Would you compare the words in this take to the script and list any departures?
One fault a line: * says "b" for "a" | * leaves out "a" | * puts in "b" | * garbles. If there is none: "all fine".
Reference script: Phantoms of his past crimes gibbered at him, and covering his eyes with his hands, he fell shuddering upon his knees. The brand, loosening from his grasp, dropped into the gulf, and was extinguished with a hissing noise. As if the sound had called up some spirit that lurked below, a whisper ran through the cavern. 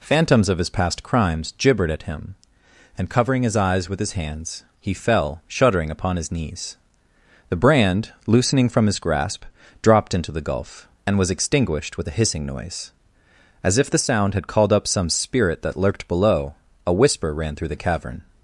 all fine